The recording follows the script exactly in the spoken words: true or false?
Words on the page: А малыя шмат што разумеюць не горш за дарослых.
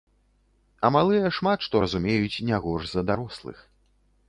true